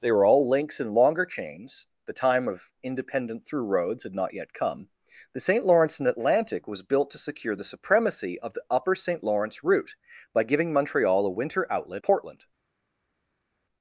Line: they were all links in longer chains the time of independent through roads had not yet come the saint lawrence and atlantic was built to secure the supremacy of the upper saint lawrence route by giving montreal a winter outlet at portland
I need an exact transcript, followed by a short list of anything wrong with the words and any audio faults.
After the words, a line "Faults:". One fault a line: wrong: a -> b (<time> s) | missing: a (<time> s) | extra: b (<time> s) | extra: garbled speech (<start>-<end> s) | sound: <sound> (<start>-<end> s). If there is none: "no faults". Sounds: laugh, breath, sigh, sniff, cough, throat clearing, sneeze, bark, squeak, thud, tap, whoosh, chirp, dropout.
they were all links in longer chains the time of independent through roads had not yet come the saint lawrence and atlantic was built to secure the supremacy of the upper saint lawrence route by giving montreal a winter outlet portland
Faults:
missing: at (12.0 s)